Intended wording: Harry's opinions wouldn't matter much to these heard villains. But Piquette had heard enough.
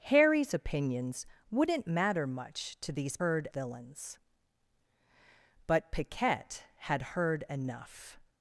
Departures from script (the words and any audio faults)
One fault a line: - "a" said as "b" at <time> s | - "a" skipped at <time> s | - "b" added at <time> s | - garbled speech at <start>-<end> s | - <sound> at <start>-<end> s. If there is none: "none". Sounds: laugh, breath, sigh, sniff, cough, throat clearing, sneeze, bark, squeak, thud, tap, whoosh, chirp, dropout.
none